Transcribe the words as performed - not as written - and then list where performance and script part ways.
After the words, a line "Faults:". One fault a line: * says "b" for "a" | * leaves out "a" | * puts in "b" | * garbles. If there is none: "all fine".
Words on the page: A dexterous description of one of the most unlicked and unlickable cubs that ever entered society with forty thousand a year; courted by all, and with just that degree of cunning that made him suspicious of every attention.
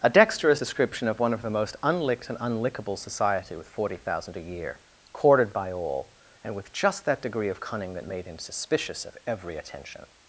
A dexterous description of one of the most unlicked and unlickable society with forty thousand a year; courted by all, and with just that degree of cunning that made him suspicious of every attention.
Faults:
* leaves out "cubs that ever entered"